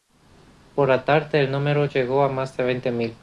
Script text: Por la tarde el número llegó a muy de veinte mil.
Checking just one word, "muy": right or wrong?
wrong